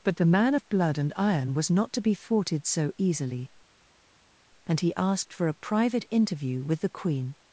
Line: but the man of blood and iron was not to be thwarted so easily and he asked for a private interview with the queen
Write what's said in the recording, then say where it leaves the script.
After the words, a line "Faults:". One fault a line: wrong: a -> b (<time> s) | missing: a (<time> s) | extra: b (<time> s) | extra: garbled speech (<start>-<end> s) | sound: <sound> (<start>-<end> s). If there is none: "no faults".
but the man of blood and iron was not to be thwarted so easily and he asked for a private interview with the queen
Faults:
no faults